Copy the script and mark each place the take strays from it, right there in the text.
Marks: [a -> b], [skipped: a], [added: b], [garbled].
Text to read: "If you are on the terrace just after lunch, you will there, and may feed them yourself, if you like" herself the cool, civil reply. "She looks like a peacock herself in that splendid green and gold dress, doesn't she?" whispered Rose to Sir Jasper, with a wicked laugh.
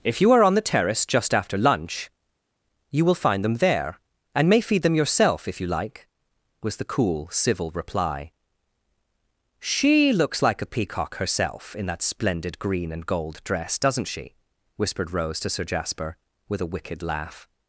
"If you are on the terrace just after lunch, you will [added: find them] there, and may feed them yourself, if you like" [herself -> was] the cool, civil reply. "She looks like a peacock herself in that splendid green and gold dress, doesn't she?" whispered Rose to Sir Jasper, with a wicked laugh.